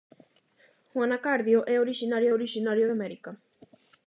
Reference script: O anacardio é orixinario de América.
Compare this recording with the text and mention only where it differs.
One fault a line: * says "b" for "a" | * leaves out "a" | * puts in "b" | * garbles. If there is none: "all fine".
* puts in "orixinario"